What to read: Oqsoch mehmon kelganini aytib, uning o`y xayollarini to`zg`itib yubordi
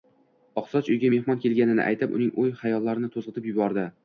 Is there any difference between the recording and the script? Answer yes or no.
yes